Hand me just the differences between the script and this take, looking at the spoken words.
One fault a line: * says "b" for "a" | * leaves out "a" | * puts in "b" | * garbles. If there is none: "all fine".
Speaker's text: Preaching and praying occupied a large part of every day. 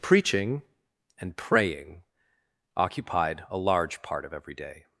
all fine